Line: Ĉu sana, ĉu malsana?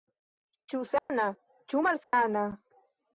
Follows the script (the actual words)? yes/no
yes